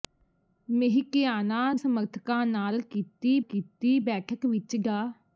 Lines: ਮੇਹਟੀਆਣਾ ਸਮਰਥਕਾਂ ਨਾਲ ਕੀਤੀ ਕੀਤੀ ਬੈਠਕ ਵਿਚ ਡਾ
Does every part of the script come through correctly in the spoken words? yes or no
yes